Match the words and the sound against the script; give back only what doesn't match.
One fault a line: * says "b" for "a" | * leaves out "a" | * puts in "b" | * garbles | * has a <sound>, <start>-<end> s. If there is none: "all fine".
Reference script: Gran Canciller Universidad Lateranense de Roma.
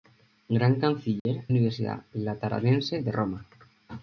* has a dropout, 1.2-1.3 s